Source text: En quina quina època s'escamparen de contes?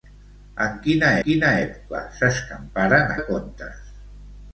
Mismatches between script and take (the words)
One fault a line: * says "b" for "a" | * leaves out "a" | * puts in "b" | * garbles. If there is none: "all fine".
all fine